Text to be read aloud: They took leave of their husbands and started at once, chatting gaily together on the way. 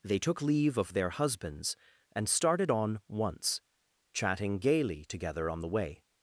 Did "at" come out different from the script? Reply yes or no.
yes